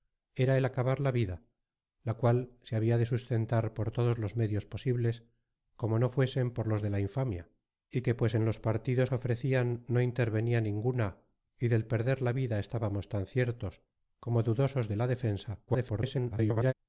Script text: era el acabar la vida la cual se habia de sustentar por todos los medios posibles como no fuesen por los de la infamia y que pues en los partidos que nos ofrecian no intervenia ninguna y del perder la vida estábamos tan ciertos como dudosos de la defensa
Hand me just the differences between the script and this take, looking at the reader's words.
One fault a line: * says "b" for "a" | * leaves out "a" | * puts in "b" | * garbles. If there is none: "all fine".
* leaves out "que nos"
* garbles